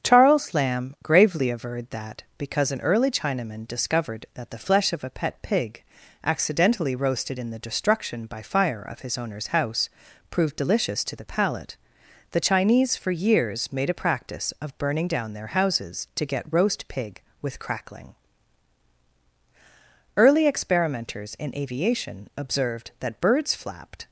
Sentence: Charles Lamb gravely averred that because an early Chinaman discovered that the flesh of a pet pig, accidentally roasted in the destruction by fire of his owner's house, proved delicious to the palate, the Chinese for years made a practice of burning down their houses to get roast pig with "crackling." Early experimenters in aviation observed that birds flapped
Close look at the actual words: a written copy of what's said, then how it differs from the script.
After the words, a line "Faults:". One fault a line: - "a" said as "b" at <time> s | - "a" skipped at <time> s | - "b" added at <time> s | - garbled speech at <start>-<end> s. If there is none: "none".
Charles Lamb gravely averred that because an early Chinaman discovered that the flesh of a pet pig, accidentally roasted in the destruction by fire of his owner's house, proved delicious to the palate, the Chinese for years made a practice of burning down their houses to get roast pig with "crackling." Early experimenters in aviation observed that birds flapped
Faults:
none